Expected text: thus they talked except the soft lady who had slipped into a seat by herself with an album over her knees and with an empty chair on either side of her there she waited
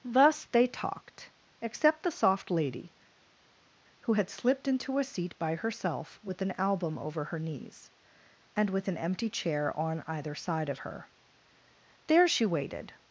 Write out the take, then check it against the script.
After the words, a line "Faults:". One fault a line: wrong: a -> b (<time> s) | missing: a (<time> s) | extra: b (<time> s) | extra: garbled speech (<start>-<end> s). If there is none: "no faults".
thus they talked except the soft lady who had slipped into a seat by herself with an album over her knees and with an empty chair on either side of her there she waited
Faults:
no faults